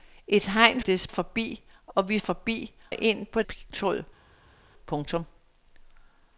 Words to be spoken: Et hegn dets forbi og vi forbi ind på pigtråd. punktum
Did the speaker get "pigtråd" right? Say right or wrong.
right